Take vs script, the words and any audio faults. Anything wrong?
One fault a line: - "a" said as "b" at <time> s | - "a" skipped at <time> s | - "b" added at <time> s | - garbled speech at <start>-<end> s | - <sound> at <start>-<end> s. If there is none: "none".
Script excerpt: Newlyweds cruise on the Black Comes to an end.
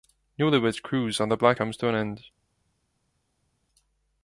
none